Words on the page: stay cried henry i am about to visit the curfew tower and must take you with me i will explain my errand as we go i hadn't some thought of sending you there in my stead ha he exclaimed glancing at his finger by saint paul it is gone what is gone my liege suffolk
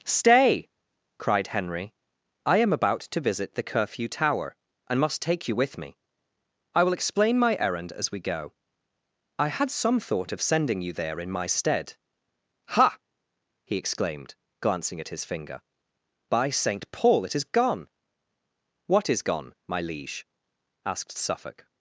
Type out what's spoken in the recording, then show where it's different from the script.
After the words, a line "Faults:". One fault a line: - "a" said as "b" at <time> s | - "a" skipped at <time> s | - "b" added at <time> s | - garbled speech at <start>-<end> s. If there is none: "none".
stay cried henry i am about to visit the curfew tower and must take you with me i will explain my errand as we go i had some thought of sending you there in my stead ha he exclaimed glancing at his finger by saint paul it is gone what is gone my liege asked suffolk
Faults:
- "hadn't" said as "had" at 9.5 s
- "asked" added at 20.9 s